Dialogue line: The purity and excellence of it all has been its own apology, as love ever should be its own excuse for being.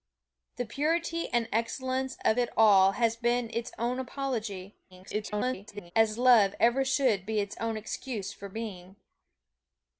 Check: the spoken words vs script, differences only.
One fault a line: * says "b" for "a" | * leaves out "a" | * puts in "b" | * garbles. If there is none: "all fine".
* garbles